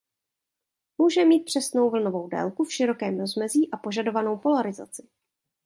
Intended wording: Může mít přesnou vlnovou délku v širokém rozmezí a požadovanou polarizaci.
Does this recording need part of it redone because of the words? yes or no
no